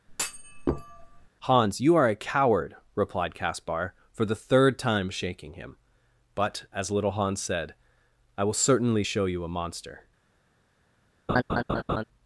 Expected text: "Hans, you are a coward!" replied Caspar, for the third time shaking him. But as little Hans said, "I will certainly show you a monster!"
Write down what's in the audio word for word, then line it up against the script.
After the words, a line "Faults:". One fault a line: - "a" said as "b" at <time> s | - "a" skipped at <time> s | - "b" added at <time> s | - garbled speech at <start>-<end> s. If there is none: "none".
"Hans, you are a coward!" replied Caspar, for the third time shaking him. But as little Hans said, "I will certainly show you a monster!"
Faults:
none